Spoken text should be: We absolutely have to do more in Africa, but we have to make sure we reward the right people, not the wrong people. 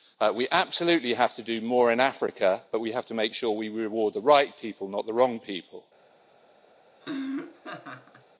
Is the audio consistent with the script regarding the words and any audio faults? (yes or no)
no